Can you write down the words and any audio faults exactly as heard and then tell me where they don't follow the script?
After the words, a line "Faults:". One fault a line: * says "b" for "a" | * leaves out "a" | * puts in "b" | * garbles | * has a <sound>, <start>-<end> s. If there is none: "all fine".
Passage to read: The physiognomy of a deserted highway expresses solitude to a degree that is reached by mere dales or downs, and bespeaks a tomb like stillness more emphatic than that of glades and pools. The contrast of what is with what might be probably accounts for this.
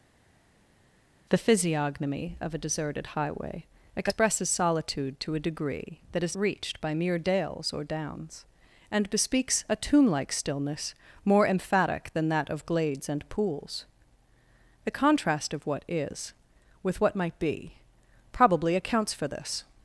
The physiognomy of a deserted highway expresses solitude to a degree that is reached by mere dales or downs, and bespeaks a tomb like stillness more emphatic than that of glades and pools. The contrast of what is with what might be probably accounts for this.
Faults:
all fine